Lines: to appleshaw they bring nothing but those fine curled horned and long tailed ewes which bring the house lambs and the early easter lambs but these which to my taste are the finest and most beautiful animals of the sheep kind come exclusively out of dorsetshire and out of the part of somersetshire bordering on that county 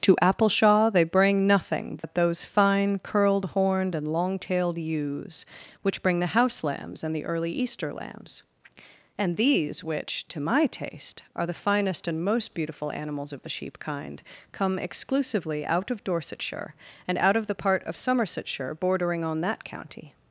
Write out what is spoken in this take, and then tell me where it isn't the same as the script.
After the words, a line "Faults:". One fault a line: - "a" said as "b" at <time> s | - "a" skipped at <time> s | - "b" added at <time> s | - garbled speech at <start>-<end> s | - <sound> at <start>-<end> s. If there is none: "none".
to appleshaw they bring nothing but those fine curled horned and long tailed ewes which bring the house lambs and the early easter lambs and these which to my taste are the finest and most beautiful animals of the sheep kind come exclusively out of dorsetshire and out of the part of somersetshire bordering on that county
Faults:
- dropout at 2.0-2.0 s
- "but" said as "and" at 9.2 s